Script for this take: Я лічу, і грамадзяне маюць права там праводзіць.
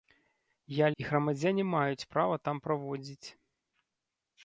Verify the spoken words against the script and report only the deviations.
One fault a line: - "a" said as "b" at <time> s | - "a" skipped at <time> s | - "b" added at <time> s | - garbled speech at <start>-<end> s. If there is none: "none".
- "лічу" skipped at 0.9 s